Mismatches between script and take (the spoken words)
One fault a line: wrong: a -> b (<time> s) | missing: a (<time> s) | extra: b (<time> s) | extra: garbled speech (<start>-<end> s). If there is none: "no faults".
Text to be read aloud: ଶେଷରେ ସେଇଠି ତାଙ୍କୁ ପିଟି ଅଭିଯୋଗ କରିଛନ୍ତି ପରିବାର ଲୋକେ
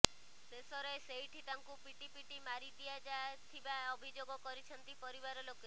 extra: ପିଟି ମାରି ଦିଆଯାଥିବା (2.1 s)